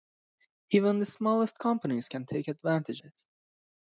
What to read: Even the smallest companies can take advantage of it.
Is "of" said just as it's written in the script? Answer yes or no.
no